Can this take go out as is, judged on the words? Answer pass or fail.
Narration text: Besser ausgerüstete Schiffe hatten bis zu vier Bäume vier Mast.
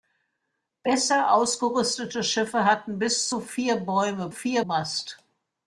pass